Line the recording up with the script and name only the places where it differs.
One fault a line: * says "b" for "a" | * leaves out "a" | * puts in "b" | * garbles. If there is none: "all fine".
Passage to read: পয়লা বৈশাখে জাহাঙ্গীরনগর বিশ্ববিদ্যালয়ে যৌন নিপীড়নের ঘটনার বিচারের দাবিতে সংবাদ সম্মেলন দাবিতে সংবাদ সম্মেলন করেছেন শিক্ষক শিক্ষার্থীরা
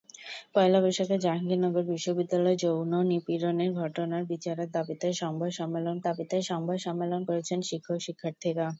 all fine